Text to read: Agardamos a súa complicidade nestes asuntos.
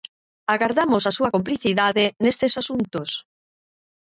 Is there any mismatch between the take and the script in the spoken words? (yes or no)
no